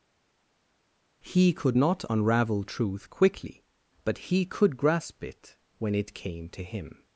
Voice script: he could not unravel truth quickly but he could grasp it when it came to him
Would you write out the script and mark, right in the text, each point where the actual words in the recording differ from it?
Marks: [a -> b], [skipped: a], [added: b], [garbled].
he could not unravel truth quickly but he could grasp it when it came to him